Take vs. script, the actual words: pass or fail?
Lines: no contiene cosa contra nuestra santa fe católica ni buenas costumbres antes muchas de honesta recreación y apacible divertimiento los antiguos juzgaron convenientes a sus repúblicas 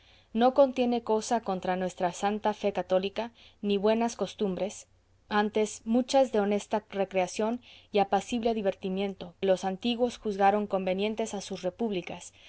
pass